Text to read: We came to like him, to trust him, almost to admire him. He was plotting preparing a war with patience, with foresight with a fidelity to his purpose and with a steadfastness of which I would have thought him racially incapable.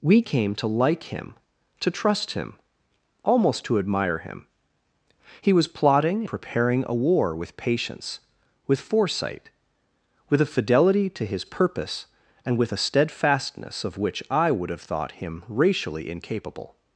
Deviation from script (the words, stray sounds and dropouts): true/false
false